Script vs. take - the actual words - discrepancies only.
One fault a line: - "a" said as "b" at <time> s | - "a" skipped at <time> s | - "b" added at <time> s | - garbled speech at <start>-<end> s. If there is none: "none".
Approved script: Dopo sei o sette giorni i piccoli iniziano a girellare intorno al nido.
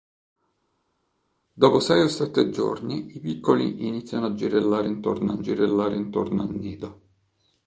- "girellare intorno al" added at 5.4 s